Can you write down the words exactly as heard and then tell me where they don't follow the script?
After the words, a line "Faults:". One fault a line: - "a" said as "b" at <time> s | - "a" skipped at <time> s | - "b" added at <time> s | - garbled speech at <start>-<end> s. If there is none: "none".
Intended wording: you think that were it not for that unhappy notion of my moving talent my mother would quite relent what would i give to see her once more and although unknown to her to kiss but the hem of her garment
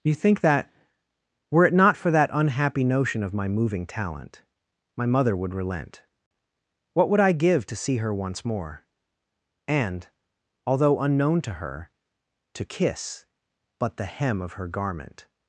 you think that were it not for that unhappy notion of my moving talent my mother would relent what would i give to see her once more and although unknown to her to kiss but the hem of her garment
Faults:
- "quite" skipped at 5.5 s